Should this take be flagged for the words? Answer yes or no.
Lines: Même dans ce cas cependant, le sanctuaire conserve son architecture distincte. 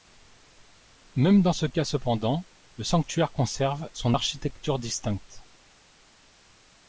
no